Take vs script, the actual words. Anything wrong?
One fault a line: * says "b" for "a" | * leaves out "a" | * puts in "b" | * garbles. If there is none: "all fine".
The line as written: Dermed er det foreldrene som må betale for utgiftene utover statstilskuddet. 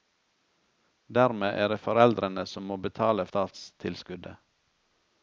* leaves out "for utgiftene utover"